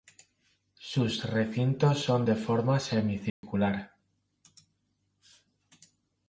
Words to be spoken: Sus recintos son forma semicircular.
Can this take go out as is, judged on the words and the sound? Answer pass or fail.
fail